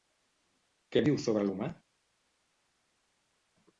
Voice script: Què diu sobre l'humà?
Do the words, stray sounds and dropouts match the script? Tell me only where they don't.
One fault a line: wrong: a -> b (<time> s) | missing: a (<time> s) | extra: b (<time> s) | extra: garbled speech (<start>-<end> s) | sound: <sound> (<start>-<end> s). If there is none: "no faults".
no faults